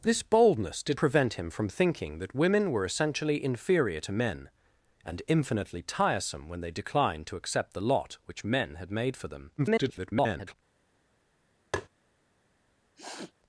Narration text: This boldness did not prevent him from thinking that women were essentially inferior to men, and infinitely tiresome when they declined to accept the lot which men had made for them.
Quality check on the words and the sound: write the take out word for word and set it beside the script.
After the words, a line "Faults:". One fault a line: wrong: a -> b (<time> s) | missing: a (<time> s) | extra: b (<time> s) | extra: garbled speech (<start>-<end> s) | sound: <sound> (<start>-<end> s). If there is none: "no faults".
This boldness did prevent him from thinking that women were essentially inferior to men, and infinitely tiresome when they declined to accept the lot which men had made for them. [garbled]
Faults:
missing: not (1.0 s)
extra: garbled speech (9.6-10.5 s)
sound: tap (11.7-11.9 s)
sound: sniff (12.9-13.3 s)